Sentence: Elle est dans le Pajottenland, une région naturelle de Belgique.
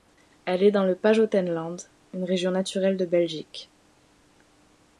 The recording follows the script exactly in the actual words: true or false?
true